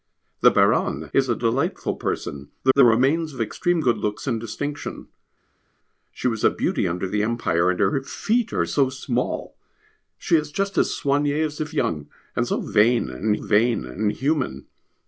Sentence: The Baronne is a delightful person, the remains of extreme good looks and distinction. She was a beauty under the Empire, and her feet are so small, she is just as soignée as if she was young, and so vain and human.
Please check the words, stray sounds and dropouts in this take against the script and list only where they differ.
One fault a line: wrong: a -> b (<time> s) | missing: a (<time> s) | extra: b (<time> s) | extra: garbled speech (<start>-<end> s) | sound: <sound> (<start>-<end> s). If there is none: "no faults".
extra: the (2.7 s)
missing: she was (11.7 s)
extra: vain and (13.3 s)